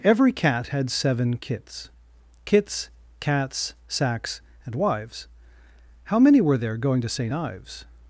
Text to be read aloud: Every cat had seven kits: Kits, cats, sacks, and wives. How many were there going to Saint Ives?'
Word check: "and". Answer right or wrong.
right